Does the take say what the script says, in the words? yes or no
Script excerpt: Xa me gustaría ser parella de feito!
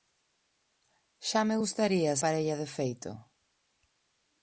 no